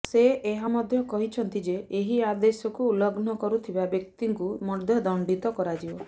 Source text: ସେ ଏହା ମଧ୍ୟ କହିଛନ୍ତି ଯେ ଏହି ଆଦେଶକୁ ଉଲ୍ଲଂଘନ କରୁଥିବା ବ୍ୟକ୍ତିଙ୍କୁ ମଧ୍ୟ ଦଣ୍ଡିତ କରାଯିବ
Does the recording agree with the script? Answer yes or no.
yes